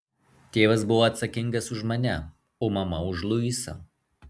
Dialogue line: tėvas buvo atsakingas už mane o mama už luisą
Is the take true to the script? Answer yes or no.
yes